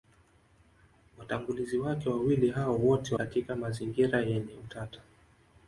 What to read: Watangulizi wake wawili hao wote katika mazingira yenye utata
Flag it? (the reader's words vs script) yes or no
no